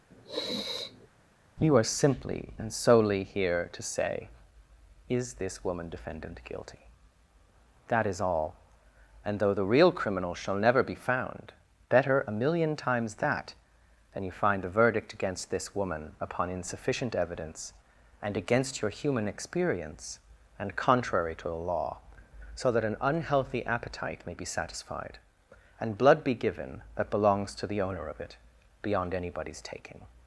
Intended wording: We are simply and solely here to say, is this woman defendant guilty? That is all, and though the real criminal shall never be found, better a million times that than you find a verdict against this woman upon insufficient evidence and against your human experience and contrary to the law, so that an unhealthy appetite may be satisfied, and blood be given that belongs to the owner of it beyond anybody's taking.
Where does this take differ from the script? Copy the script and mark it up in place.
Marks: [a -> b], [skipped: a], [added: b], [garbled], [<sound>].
[sniff] [We -> You] are simply and solely here to say, is this woman defendant guilty? That is all, and though the real criminal shall never be found, better a million times that than you find a verdict against this woman upon insufficient evidence and against your human experience and contrary to the law, so that an unhealthy appetite may be satisfied, and blood be given that belongs to the owner of it beyond anybody's taking.